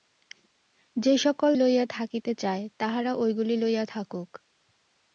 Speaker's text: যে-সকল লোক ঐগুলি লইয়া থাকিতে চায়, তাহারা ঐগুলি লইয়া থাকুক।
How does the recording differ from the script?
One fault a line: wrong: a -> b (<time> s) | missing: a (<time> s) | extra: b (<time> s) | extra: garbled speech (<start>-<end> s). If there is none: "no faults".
missing: লোক ঐগুলি (1.5 s)